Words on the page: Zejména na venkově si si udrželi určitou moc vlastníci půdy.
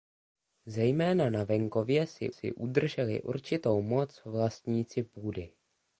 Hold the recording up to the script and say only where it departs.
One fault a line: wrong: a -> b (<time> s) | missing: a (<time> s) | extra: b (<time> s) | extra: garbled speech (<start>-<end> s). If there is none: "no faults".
no faults